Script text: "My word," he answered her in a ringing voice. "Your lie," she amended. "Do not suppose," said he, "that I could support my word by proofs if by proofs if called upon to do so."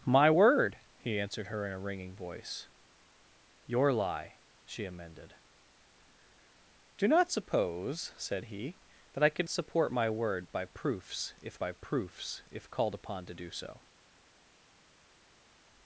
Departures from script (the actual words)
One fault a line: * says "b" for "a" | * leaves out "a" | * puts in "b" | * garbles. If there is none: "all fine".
all fine